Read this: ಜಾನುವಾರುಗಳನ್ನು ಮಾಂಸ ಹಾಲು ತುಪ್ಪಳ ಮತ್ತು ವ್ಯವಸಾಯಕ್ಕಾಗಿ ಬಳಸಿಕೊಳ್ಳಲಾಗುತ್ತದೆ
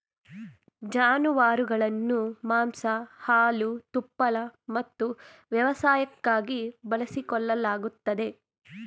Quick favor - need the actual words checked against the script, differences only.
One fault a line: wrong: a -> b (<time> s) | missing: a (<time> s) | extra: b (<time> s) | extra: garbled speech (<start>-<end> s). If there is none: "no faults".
no faults